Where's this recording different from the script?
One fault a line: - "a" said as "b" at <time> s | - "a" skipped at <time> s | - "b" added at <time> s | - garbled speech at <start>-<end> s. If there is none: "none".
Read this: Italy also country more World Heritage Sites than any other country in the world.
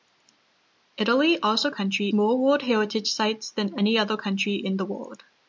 none